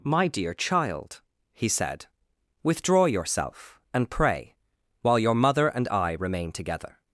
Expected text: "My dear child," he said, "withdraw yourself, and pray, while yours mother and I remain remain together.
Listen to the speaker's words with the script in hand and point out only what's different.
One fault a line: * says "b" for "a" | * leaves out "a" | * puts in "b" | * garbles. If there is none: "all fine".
* says "your" for "yours"
* leaves out "remain"